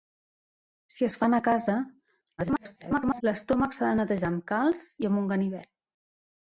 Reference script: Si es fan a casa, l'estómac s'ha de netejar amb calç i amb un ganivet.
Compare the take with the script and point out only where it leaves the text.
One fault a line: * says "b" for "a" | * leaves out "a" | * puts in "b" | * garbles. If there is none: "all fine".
* garbles